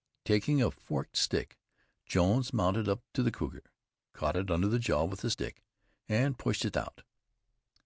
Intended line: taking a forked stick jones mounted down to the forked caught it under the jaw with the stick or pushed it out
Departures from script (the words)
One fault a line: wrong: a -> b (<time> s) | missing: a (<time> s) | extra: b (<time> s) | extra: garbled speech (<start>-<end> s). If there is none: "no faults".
wrong: down -> up (2.9 s)
wrong: forked -> cougar (3.3 s)
wrong: or -> and (6.1 s)